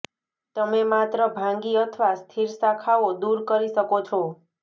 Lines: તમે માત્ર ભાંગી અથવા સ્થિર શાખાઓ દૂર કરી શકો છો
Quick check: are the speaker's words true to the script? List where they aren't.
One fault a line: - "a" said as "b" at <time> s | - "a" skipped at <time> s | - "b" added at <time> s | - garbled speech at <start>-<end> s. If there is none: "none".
none